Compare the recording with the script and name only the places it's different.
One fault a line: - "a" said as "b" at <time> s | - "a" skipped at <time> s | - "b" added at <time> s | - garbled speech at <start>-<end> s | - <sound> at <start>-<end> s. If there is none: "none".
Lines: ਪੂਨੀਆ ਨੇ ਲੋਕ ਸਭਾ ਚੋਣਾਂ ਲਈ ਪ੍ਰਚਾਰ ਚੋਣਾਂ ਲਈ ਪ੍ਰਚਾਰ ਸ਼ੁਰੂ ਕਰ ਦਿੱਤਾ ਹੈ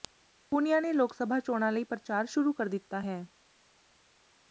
- "ਚੋਣਾਂ ਲਈ ਪ੍ਰਚਾਰ" skipped at 2.2 s